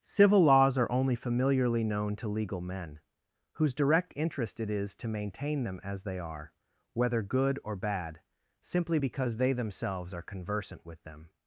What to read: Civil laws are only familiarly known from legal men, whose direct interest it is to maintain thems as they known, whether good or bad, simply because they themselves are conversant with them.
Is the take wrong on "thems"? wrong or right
wrong